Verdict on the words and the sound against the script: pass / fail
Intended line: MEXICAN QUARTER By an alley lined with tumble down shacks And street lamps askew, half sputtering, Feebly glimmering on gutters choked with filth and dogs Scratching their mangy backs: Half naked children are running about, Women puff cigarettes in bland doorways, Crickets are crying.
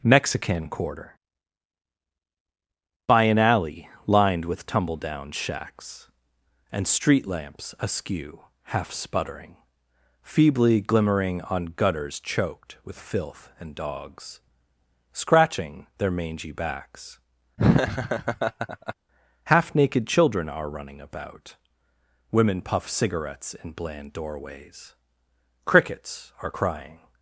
fail